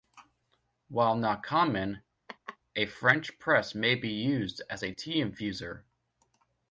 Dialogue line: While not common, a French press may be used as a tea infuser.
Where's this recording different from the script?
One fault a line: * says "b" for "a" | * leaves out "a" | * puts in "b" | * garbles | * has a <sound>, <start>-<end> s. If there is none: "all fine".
* has a laugh, 2.3-2.6 s